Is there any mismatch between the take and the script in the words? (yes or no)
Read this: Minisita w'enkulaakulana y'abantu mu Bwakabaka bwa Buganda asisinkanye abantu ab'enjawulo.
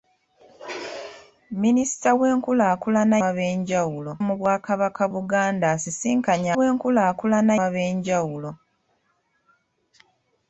yes